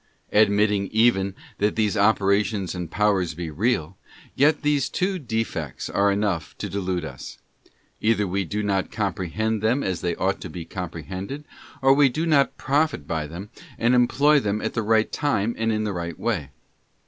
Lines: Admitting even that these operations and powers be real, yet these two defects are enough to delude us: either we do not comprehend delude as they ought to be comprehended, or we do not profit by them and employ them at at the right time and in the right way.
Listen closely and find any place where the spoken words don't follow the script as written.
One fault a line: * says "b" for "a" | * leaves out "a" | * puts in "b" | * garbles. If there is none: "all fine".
* says "them" for "delude"
* leaves out "at"